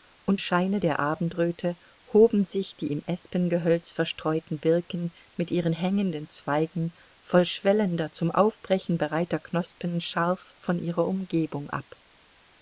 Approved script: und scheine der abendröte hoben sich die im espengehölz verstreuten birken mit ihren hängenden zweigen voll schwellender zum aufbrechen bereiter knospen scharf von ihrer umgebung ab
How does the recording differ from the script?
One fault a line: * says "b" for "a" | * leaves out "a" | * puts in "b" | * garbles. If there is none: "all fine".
all fine